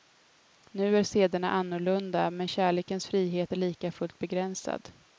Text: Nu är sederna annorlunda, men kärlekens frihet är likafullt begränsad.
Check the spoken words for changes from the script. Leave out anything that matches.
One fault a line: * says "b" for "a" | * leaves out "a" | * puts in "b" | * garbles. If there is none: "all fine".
all fine